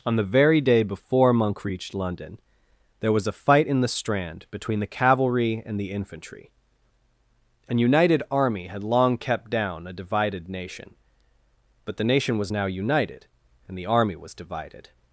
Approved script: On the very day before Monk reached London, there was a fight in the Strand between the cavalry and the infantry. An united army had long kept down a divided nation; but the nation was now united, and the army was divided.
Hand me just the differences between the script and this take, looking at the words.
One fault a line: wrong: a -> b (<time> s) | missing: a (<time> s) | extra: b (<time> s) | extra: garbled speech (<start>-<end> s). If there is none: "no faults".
no faults